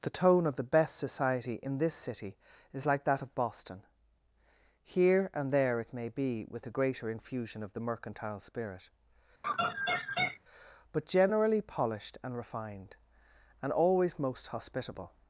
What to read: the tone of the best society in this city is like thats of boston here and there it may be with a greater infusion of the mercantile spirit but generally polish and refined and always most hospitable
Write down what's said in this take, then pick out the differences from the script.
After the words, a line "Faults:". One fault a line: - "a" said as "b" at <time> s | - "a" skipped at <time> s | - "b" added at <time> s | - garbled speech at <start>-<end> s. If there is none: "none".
the tone of the best society in this city is like that of boston here and there it may be with a greater infusion of the mercantile spirit but generally polished and refined and always most hospitable
Faults:
- "thats" said as "that" at 3.0 s
- "polish" said as "polished" at 11.6 s